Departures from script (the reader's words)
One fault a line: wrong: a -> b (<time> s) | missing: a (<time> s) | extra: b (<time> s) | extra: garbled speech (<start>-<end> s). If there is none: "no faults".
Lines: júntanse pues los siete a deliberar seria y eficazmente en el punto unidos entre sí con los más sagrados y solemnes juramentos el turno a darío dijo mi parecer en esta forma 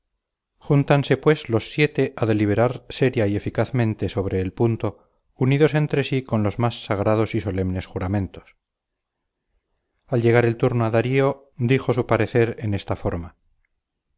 wrong: en -> sobre (4.1 s)
extra: al llegar (10.1 s)
wrong: mi -> su (11.9 s)